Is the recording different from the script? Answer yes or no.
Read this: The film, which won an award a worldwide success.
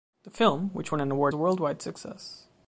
no